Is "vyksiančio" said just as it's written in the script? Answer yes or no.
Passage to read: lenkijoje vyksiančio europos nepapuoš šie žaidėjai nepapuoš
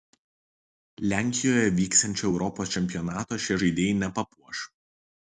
yes